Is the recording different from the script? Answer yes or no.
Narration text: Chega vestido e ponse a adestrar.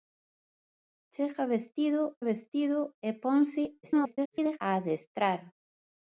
yes